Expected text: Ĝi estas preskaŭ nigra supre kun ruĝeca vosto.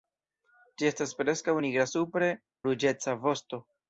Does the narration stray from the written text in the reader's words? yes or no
yes